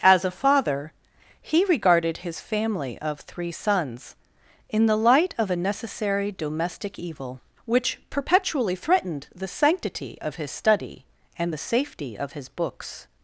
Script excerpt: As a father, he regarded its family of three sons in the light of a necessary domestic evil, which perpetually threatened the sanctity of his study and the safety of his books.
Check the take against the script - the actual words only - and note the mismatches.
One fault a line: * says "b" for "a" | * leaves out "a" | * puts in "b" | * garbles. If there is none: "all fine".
* says "his" for "its"